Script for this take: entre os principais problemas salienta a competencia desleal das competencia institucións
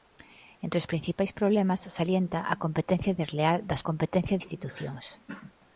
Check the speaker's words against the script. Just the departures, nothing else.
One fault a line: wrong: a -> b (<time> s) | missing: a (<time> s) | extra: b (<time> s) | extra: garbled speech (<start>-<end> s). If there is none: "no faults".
no faults